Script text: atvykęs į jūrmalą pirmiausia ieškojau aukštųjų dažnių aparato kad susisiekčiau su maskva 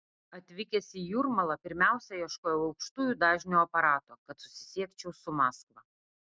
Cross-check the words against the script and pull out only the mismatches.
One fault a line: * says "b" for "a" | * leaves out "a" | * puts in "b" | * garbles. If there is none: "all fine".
all fine